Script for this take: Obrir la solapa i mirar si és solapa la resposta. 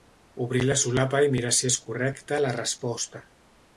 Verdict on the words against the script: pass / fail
fail